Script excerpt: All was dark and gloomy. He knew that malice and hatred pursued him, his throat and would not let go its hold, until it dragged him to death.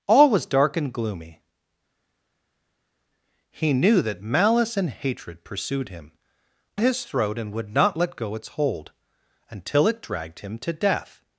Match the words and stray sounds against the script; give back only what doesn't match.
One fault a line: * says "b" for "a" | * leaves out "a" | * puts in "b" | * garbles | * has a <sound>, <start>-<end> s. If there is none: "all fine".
all fine